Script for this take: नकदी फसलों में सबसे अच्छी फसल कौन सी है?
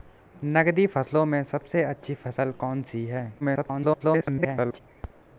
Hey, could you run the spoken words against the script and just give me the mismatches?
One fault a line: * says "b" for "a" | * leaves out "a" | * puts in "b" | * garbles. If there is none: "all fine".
* garbles